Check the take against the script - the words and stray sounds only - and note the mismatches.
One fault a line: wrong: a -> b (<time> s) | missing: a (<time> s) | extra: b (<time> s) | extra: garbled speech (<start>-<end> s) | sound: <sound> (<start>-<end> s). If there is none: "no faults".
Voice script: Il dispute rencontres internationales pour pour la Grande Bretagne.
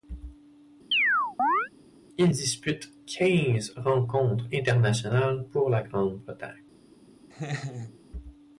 sound: chirp (0.9-1.7 s)
extra: quinze (3.0 s)
missing: pour (5.7 s)
sound: laugh (7.3-8.0 s)